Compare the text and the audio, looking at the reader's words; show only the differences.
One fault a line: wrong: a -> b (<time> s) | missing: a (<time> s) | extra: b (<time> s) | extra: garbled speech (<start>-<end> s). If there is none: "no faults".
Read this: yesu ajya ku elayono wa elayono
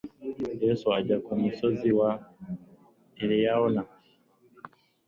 wrong: elayono -> musozi (1.4 s)